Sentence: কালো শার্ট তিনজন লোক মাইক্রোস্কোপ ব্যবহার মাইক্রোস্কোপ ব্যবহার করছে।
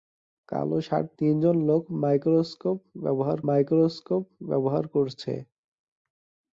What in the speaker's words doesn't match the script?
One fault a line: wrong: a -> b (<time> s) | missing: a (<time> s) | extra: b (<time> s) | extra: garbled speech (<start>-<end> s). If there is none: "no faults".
no faults